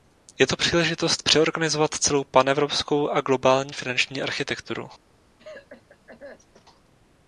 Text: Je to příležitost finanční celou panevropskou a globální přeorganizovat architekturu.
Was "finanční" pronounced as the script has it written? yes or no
no